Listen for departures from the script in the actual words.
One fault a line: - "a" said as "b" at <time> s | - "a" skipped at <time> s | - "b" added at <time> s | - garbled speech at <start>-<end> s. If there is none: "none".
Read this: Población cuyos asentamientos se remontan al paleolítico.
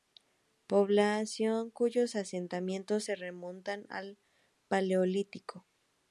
none